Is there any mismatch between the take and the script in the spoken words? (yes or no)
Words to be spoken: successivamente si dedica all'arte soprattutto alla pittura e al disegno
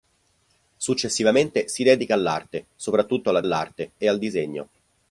yes